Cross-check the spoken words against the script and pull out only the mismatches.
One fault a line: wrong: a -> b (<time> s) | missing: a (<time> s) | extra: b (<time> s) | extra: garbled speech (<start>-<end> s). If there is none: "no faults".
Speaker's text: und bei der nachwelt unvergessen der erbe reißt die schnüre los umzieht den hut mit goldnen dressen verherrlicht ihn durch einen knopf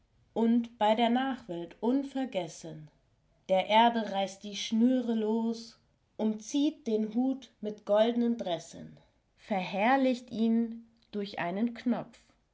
no faults